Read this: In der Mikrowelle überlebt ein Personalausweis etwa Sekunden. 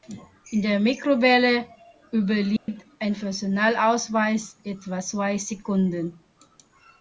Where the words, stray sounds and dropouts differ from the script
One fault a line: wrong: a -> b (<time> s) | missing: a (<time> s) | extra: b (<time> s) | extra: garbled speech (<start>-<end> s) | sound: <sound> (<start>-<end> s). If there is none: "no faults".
sound: dropout (2.6-2.7 s)
extra: zwei (5.0 s)